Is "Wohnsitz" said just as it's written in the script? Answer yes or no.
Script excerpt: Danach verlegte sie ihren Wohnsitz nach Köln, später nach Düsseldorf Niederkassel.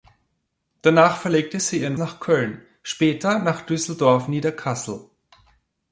no